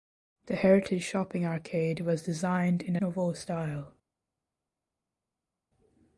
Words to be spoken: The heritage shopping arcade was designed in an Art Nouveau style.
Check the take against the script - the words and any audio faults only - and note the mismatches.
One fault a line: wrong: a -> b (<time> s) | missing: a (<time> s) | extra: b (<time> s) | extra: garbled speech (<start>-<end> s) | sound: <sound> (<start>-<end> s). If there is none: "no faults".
missing: an Art (3.0 s)